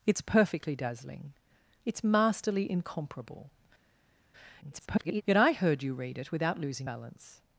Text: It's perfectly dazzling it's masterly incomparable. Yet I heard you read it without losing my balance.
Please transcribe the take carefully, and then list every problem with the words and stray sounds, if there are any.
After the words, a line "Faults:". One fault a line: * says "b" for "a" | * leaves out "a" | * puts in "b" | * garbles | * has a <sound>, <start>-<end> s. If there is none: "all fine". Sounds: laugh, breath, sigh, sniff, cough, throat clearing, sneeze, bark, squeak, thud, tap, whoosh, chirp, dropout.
It's perfectly dazzling it's masterly incomparable. [garbled] Yet I heard you read it without losing balance.
Faults:
* garbles
* leaves out "my"